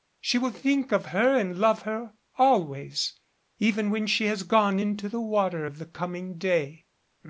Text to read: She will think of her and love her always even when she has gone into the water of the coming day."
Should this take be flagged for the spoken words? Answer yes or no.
no